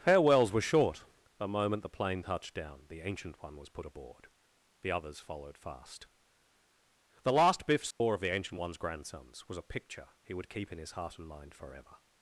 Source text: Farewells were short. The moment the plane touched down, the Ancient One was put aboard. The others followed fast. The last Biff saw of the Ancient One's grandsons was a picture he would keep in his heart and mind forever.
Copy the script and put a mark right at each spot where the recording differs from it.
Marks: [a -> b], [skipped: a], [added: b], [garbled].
Farewells were short. The moment the plane touched down, the Ancient One was put aboard. The others followed fast. The last Biff saw of the Ancient One's grandsons was a picture he would keep in his heart and mind forever.